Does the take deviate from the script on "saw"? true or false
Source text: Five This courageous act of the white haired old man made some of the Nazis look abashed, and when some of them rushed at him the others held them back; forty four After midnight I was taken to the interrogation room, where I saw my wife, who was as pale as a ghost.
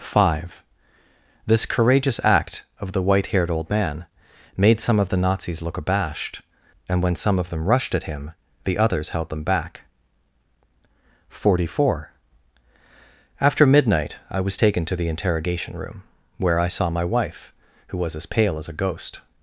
false